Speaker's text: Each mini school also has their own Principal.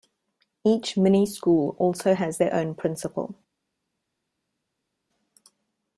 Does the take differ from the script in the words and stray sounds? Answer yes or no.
no